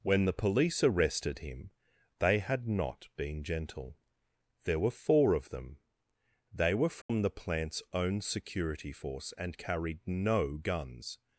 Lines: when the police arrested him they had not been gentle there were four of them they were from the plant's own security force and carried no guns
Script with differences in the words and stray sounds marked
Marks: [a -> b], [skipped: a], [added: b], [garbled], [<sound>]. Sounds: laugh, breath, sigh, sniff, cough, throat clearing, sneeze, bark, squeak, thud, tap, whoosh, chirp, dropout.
when the police arrested him they had not been gentle there were four of them they were from [dropout] the plant's own security force and carried no guns